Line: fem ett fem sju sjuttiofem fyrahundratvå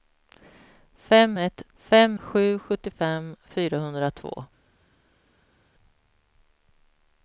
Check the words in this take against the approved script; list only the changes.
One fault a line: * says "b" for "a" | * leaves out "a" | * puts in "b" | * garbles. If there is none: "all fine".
all fine